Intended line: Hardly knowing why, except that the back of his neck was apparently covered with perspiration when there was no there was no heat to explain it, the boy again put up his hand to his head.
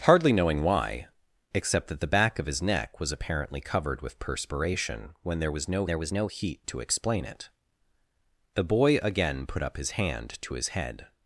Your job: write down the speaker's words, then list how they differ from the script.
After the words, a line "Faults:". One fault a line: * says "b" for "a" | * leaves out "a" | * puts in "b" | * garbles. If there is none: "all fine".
Hardly knowing why, except that the back of his neck was apparently covered with perspiration when there was no there was no heat to explain it, the boy again put up his hand to his head.
Faults:
all fine